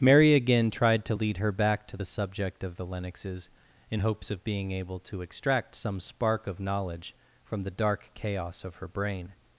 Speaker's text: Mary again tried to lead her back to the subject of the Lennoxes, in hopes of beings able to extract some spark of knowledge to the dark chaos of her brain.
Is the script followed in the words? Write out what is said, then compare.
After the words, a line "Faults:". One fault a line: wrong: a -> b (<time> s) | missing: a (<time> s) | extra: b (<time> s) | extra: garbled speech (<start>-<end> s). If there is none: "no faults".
Mary again tried to lead her back to the subject of the Lennoxes, in hopes of being able to extract some spark of knowledge from the dark chaos of her brain.
Faults:
wrong: beings -> being (4.4 s)
wrong: to -> from (7.4 s)